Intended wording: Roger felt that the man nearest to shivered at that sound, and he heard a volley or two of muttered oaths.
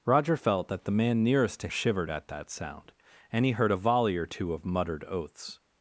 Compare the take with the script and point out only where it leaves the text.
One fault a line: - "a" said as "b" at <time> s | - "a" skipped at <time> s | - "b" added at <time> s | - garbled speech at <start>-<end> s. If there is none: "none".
none